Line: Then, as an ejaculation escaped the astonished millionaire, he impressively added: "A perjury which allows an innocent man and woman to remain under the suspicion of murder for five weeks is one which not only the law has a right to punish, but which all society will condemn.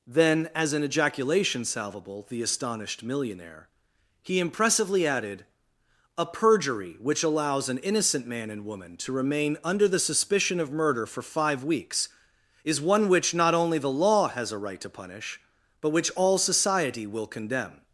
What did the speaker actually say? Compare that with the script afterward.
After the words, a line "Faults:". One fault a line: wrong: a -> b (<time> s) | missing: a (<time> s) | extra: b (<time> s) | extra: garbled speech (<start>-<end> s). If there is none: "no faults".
Then, as an ejaculation salvable the astonished millionaire, he impressively added: "A perjury which allows an innocent man and woman to remain under the suspicion of murder for five weeks is one which not only the law has a right to punish, but which all society will condemn.
Faults:
wrong: escaped -> salvable (1.6 s)